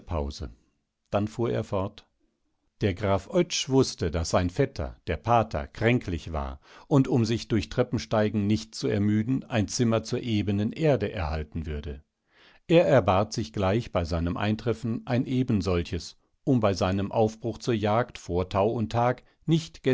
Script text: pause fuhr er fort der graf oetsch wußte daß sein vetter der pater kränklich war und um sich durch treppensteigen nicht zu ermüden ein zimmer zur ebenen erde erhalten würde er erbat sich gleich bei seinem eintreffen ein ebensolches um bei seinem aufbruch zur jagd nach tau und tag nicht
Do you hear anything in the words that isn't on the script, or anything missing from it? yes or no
yes